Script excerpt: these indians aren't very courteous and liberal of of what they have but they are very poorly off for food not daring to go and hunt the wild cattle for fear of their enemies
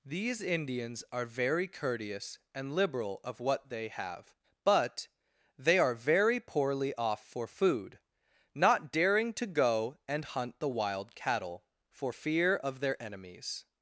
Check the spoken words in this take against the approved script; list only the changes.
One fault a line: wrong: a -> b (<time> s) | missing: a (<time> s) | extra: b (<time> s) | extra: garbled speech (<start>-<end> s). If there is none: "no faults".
wrong: aren't -> are (1.1 s)
missing: of (3.4 s)